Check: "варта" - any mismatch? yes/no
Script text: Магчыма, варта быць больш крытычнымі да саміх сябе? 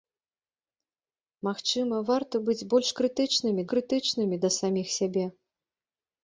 no